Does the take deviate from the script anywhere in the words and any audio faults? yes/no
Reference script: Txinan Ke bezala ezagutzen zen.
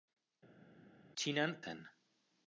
yes